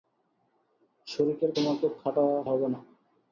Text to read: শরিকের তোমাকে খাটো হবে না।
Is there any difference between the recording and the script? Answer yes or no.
no